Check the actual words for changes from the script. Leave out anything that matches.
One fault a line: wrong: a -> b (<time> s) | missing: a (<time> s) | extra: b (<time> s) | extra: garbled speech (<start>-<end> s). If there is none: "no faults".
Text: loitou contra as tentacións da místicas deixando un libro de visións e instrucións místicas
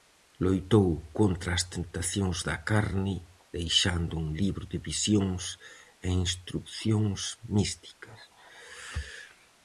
wrong: místicas -> carne (2.7 s)